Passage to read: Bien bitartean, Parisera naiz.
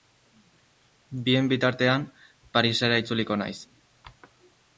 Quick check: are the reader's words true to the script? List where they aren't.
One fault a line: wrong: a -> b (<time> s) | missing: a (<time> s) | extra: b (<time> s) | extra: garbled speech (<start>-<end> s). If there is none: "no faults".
extra: itzuliko (3.0 s)